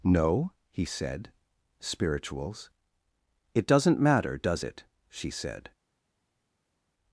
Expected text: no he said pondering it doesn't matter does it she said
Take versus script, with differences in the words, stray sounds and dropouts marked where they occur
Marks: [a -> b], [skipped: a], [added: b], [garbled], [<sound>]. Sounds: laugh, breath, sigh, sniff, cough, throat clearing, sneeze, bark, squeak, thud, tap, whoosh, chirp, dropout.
no he said [pondering -> spirituals] it doesn't matter does it she said